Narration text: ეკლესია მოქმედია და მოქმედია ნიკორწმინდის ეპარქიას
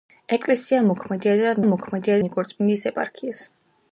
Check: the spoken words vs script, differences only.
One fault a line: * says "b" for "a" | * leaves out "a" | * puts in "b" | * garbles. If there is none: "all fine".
all fine